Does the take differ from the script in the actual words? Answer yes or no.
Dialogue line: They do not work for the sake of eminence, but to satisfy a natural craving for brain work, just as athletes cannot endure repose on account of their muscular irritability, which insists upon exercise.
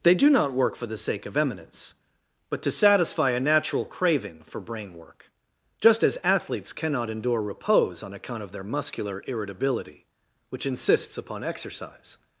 no